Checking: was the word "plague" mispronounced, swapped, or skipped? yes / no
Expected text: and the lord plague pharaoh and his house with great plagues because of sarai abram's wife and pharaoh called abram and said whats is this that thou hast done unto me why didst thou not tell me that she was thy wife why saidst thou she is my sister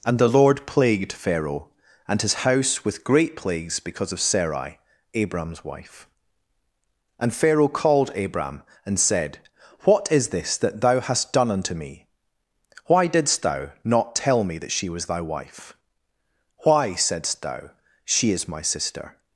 yes